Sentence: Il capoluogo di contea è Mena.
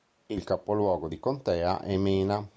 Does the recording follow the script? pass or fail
pass